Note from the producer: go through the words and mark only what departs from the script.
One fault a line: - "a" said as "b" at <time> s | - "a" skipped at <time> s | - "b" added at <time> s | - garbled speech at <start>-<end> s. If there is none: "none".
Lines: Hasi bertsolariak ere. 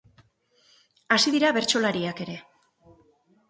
- "dira" added at 1.4 s